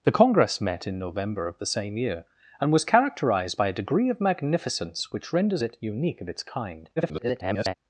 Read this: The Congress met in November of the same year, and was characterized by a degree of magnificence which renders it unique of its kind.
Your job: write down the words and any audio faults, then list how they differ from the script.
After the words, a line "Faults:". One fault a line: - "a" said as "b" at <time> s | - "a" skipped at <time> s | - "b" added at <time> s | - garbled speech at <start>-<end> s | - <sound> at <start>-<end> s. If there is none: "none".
The Congress met in November of the same year, and was characterized by a degree of magnificence which renders it unique of its kind. [garbled]
Faults:
- garbled speech at 7.0-7.7 s